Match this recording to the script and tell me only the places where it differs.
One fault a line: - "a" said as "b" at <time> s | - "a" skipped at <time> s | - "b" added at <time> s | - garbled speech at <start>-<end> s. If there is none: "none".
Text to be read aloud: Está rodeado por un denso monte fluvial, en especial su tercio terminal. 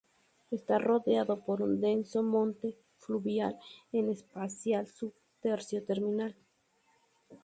none